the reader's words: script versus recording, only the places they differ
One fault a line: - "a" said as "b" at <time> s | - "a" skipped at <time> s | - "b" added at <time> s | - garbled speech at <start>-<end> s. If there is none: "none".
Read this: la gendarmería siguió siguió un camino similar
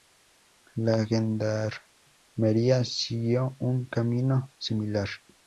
- "siguió" skipped at 3.5 s